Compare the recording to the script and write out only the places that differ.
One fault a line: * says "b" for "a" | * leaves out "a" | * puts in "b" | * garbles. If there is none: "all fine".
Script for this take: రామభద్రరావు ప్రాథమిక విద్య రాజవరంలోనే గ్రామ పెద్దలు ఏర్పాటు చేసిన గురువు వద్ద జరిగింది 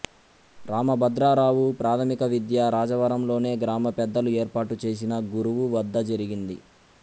all fine